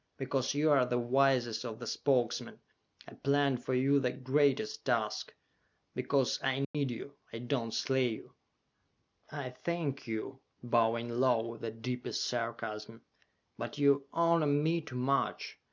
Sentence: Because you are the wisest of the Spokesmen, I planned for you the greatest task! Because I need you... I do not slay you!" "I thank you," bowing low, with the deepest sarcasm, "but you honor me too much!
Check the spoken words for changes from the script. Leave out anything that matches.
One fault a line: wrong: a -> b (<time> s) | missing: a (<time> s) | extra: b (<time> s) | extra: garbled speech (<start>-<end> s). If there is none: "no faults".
no faults